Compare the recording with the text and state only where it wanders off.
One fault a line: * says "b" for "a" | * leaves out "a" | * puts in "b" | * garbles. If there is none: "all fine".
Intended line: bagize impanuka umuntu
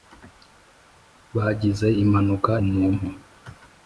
all fine